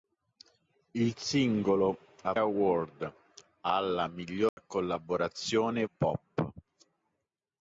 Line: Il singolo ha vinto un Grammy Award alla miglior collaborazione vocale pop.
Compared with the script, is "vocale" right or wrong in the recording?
wrong